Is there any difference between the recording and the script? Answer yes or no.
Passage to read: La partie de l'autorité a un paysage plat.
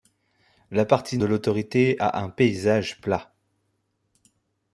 no